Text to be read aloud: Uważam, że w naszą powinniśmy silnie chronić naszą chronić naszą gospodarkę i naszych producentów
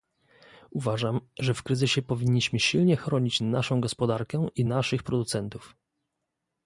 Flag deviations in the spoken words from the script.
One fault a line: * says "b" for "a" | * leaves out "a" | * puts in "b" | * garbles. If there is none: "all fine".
* says "kryzysie" for "naszą"
* leaves out "chronić naszą"